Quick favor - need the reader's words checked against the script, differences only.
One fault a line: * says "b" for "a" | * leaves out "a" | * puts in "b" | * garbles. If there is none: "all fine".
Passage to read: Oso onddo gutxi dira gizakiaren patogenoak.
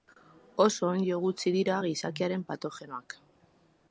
all fine